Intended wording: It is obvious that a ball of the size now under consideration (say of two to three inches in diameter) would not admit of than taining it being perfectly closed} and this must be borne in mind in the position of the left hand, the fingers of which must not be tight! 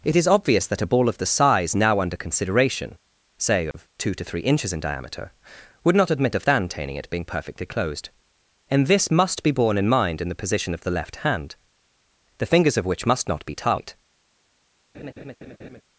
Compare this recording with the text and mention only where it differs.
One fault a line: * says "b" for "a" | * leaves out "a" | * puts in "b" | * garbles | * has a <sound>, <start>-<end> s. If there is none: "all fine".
* has a dropout, 3.7-3.7 s
* has a laugh, 14.9-15.8 s